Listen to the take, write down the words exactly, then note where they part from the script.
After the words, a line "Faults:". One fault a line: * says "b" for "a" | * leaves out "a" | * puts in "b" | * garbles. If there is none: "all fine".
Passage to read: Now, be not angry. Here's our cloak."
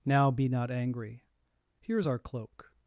Now, be not angry. Here's our cloak."
Faults:
all fine